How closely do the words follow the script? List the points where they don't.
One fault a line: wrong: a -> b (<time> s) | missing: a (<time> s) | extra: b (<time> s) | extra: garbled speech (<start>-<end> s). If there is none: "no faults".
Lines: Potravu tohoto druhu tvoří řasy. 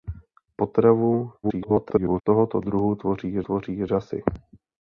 extra: garbled speech (1.4-2.2 s)
extra: tvoří (3.4 s)